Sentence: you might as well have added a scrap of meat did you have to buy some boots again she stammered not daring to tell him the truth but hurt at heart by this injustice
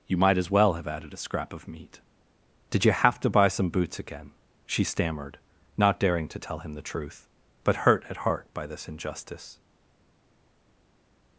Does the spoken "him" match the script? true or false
true